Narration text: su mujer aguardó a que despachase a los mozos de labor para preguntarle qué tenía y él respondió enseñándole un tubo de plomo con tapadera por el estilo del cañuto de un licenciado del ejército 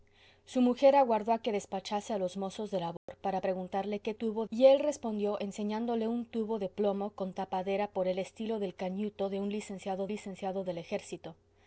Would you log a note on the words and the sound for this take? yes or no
yes